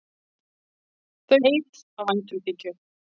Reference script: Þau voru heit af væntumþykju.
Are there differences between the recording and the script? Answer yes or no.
yes